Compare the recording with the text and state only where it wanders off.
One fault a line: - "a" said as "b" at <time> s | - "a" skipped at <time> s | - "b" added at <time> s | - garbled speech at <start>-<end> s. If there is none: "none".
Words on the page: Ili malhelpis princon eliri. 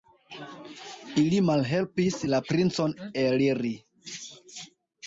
- "la" added at 2.3 s